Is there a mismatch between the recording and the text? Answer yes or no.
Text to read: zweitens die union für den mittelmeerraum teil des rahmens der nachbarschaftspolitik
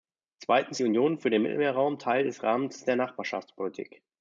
no